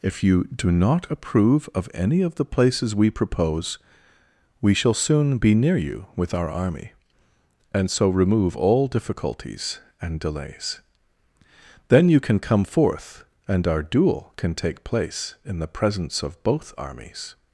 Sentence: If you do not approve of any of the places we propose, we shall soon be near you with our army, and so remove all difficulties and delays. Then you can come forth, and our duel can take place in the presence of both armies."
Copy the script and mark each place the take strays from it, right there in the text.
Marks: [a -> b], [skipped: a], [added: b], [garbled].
If you do not approve of any of the places we propose, we shall soon be near you with our army, and so remove all difficulties and delays. Then you can come forth, and our duel can take place in the presence of both armies."